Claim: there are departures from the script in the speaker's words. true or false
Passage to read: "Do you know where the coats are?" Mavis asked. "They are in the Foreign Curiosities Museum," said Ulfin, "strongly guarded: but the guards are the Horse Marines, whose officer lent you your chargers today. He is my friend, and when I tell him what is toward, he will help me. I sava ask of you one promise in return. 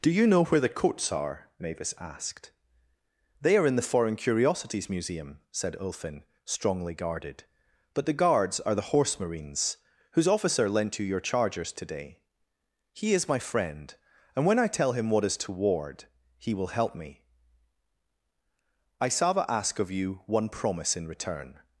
false